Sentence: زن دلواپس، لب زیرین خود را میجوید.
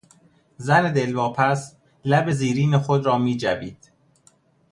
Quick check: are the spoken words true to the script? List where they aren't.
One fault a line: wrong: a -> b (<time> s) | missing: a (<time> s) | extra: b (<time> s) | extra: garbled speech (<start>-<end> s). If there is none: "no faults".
no faults